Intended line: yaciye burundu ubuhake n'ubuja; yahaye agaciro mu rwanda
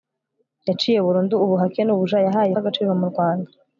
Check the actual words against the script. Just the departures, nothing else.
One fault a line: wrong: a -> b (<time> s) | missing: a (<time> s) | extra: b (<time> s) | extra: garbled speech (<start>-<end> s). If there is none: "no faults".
no faults